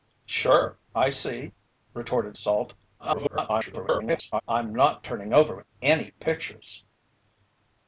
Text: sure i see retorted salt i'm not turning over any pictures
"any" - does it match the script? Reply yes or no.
yes